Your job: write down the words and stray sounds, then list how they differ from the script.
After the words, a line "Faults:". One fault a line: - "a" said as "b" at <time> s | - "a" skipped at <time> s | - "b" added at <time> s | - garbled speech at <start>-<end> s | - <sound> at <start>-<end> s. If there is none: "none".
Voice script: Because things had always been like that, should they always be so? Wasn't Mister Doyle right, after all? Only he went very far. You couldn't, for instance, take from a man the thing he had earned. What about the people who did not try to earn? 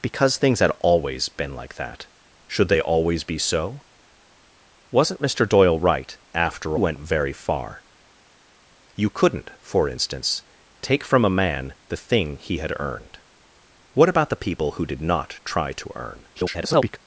Because things had always been like that, should they always be so? Wasn't Mister Doyle right, after went very far. You couldn't, for instance, take from a man the thing he had earned. What about the people who did not try to earn? [garbled]
Faults:
- "all Only he" skipped at 6.8 s
- garbled speech at 16.3-17.0 s